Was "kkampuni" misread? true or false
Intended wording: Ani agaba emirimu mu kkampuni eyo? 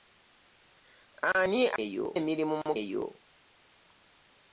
true